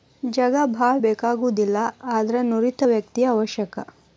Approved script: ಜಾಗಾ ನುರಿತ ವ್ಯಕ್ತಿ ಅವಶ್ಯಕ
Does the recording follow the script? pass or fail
fail